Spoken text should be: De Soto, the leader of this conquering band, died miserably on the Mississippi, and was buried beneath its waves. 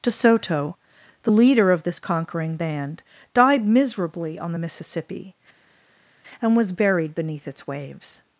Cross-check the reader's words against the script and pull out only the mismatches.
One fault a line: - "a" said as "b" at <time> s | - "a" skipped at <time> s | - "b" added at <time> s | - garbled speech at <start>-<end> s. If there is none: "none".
none